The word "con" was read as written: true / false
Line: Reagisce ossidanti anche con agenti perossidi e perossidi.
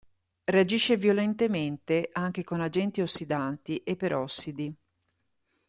true